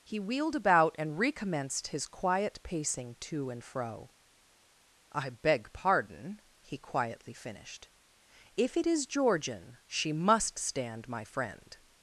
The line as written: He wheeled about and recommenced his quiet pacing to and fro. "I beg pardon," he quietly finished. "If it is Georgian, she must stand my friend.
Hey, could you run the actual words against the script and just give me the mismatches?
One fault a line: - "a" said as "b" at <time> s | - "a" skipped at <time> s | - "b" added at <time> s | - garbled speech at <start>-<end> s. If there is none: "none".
none